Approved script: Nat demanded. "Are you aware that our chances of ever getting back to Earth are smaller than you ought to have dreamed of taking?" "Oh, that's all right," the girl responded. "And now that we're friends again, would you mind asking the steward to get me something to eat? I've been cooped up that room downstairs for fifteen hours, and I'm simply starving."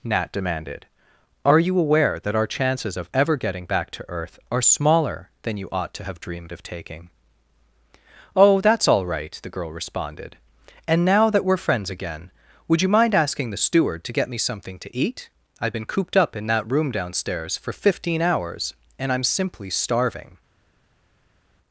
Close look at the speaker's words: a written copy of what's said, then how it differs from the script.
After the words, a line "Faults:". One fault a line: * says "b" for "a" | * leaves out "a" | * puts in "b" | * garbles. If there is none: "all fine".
Nat demanded. "Are you aware that our chances of ever getting back to Earth are smaller than you ought to have dreamed of taking?" "Oh, that's all right," the girl responded. "And now that we're friends again, would you mind asking the steward to get me something to eat? I've been cooped up in that room downstairs for fifteen hours, and I'm simply starving."
Faults:
* puts in "in"